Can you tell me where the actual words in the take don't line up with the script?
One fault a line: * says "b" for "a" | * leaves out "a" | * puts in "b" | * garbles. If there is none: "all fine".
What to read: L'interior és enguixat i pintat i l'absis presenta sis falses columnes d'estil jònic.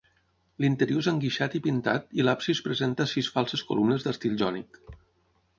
all fine